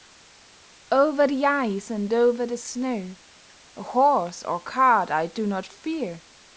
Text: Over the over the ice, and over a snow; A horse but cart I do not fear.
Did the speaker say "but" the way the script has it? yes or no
no